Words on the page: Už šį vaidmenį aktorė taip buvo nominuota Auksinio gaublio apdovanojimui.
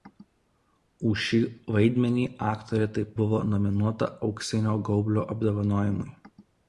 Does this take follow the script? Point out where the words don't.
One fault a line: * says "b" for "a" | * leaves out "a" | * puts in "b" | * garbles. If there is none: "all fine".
all fine